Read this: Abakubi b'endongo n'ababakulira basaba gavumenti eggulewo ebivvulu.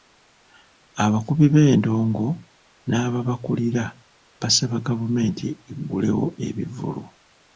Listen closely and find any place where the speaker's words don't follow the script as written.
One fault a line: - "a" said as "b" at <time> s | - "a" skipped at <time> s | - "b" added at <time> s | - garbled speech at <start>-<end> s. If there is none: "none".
none